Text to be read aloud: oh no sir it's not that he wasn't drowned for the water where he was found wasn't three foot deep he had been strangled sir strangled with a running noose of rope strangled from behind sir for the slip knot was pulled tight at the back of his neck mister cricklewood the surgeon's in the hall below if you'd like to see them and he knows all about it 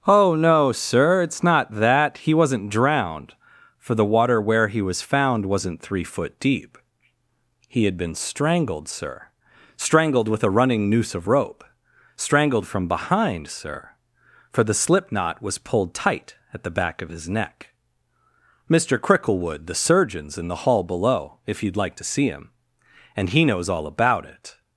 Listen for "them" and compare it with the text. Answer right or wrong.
wrong